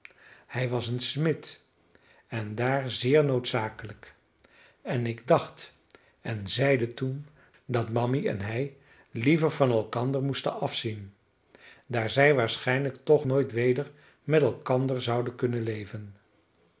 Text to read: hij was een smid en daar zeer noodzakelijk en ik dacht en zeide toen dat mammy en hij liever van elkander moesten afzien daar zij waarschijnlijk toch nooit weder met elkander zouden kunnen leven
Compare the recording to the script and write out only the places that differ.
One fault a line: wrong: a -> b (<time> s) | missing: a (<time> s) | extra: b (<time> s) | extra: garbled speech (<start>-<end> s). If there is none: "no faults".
no faults